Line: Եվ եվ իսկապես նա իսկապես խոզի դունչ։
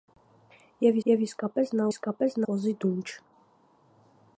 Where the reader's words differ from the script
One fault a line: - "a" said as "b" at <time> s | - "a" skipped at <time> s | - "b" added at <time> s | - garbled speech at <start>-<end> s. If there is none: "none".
none